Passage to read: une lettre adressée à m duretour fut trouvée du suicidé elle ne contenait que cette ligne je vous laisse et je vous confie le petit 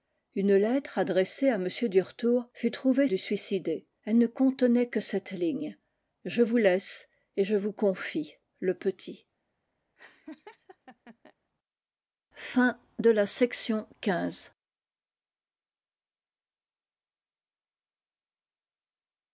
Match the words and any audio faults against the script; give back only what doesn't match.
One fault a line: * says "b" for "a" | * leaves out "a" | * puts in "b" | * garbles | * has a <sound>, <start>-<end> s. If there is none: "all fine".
* has a laugh, 10.0-11.3 s